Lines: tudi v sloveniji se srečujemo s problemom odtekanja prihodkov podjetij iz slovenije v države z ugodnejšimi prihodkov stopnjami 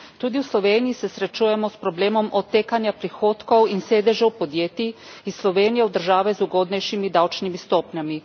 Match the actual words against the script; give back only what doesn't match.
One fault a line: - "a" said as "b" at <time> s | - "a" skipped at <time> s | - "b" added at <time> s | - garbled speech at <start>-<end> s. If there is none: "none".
- "in sedežev" added at 3.7 s
- "prihodkov" said as "davčnimi" at 7.1 s